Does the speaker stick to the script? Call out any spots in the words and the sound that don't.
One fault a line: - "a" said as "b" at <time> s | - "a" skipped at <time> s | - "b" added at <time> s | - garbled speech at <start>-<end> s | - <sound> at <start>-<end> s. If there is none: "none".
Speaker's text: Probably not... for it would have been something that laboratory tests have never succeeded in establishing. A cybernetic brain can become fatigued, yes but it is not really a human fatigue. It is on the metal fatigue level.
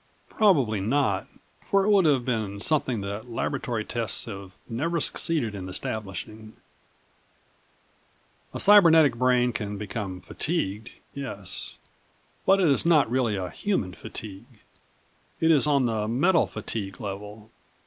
none